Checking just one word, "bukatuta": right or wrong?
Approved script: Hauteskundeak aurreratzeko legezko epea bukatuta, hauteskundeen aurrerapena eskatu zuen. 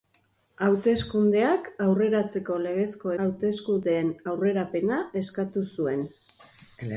wrong